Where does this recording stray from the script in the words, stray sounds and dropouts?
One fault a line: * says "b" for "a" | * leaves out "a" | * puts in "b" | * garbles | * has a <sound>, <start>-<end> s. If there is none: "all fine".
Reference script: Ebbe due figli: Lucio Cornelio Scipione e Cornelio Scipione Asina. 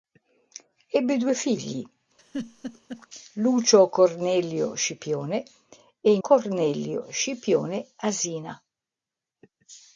* has a laugh, 2.2-3.1 s